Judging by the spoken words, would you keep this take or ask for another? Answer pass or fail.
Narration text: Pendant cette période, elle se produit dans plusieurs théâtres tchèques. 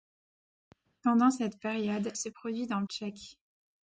fail